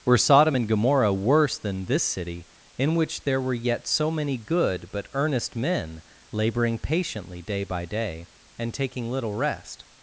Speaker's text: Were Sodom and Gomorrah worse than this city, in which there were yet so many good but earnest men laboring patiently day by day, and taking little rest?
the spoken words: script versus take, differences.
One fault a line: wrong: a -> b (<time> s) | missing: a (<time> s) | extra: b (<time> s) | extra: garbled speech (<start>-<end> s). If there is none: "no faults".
no faults